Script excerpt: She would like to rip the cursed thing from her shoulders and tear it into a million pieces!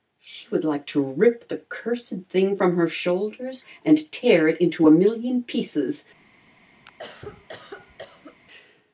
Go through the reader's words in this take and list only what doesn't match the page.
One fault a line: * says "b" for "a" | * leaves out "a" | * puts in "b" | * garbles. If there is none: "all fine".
all fine